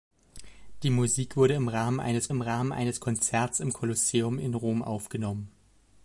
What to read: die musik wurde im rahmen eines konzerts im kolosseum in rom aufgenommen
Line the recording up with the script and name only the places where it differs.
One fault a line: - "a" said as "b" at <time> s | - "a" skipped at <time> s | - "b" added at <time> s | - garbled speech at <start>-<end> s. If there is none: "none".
- "im rahmen eines" added at 2.3 s